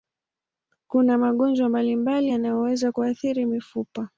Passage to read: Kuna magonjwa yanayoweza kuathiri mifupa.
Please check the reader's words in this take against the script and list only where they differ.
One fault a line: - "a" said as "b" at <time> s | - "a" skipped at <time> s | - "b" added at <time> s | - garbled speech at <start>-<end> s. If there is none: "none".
- "mbalimbali" added at 1.7 s